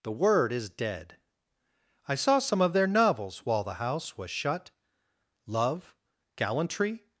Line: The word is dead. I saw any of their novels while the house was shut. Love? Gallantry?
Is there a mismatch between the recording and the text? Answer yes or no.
yes